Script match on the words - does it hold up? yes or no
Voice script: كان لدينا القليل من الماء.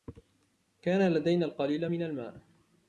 yes